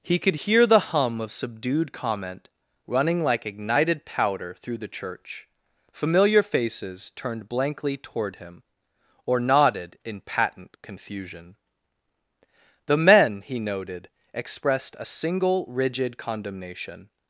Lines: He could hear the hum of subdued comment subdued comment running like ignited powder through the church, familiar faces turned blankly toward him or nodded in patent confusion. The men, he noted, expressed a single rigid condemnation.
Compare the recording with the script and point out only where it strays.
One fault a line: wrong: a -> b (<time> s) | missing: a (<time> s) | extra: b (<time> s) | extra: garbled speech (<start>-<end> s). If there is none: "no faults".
missing: subdued comment (2.5 s)